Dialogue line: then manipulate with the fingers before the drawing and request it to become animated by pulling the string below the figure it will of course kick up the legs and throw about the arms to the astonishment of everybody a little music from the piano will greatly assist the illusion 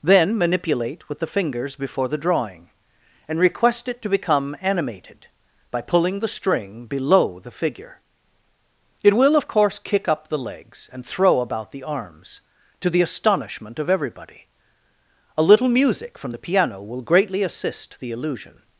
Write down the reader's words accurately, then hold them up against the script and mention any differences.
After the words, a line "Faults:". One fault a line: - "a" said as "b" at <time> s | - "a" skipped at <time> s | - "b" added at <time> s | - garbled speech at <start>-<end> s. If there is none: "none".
then manipulate with the fingers before the drawing and request it to become animated by pulling the string below the figure it will of course kick up the legs and throw about the arms to the astonishment of everybody a little music from the piano will greatly assist the illusion
Faults:
none